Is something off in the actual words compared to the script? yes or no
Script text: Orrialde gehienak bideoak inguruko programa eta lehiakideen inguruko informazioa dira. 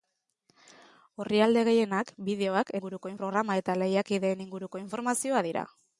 no